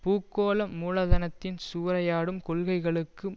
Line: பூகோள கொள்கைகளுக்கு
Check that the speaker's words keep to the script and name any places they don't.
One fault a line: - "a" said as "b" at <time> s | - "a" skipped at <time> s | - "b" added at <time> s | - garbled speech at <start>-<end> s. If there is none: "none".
- "மூலதனத்தின் சூறையாடும்" added at 0.8 s